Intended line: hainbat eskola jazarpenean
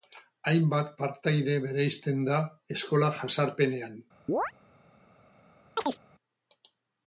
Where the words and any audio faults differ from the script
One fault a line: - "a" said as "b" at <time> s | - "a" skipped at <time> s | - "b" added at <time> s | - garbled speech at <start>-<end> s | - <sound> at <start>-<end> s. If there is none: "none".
- "partaide bereizten da" added at 1.0 s
- chirp at 4.3-4.5 s
- chirp at 5.8-6.0 s